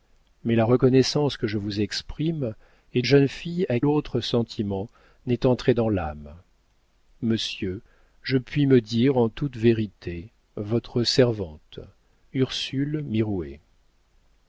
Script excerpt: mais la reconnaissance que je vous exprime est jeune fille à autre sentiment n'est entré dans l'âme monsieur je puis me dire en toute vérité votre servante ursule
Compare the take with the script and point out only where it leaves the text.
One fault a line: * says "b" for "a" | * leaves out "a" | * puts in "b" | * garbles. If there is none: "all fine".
all fine